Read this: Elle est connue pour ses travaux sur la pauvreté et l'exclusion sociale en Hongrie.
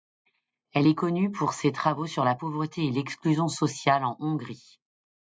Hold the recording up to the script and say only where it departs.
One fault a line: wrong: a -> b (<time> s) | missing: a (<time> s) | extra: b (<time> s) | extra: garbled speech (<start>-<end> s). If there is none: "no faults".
no faults